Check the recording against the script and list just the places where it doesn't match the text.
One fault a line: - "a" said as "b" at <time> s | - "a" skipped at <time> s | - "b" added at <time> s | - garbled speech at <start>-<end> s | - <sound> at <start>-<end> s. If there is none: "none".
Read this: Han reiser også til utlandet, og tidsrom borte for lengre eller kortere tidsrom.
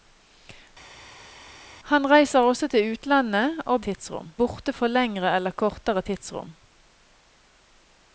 none